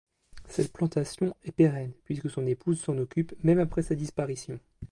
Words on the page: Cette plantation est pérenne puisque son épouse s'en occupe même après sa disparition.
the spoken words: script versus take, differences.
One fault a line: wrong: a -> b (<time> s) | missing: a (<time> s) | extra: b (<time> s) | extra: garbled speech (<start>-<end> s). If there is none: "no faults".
no faults